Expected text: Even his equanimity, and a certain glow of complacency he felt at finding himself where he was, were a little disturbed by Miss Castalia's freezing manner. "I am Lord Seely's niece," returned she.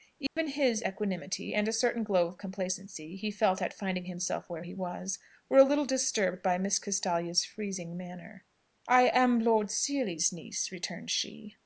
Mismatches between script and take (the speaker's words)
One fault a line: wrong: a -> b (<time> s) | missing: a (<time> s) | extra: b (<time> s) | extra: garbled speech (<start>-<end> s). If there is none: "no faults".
no faults